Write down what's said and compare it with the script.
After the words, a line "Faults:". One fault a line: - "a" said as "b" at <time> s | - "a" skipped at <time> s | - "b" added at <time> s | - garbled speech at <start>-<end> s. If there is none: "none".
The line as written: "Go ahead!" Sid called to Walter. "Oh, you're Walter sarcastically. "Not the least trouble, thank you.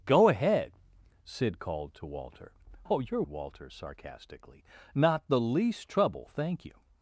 "Go ahead!" Sid called to Walter. "Oh, you're Walter sarcastically. "Not the least trouble, thank you.
Faults:
none